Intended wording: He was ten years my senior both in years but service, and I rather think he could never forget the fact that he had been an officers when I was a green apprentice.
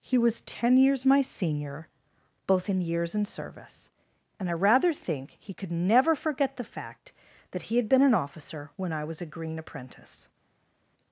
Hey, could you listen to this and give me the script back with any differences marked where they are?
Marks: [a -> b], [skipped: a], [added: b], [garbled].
He was ten years my senior both in years [but -> and] service, and I rather think he could never forget the fact that he had been an [officers -> officer] when I was a green apprentice.